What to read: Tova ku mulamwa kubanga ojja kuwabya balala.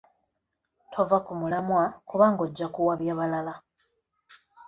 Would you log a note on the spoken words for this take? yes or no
no